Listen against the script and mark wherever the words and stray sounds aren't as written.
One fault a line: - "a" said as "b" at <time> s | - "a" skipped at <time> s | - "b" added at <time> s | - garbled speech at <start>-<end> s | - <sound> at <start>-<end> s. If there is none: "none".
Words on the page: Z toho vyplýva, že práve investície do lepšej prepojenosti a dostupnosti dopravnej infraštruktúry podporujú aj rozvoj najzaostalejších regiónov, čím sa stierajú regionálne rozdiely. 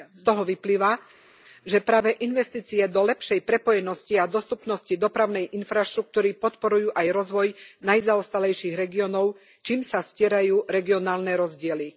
none